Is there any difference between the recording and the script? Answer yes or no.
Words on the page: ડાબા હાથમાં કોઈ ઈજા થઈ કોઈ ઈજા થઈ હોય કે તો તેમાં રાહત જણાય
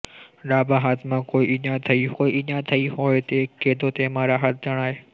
no